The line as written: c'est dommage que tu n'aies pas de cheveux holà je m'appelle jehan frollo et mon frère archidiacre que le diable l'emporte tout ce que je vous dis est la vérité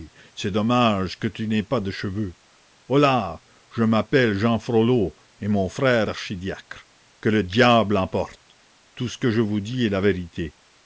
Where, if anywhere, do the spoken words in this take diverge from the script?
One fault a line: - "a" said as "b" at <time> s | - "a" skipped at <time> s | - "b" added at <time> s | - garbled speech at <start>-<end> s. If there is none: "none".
none